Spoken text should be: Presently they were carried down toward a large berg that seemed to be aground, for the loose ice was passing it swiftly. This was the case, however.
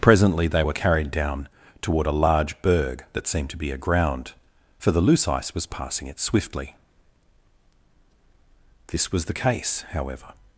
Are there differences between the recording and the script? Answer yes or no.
no